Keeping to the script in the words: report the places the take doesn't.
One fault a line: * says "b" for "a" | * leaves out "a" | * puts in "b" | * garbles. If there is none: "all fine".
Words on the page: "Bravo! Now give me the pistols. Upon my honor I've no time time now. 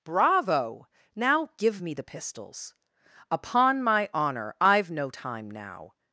* leaves out "time"